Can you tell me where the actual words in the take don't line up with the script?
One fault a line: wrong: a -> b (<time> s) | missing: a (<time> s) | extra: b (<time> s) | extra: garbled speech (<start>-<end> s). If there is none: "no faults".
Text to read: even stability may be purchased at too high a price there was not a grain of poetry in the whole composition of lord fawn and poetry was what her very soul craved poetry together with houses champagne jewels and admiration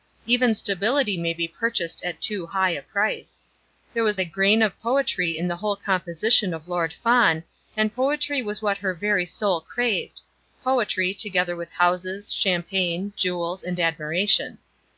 missing: not (4.2 s)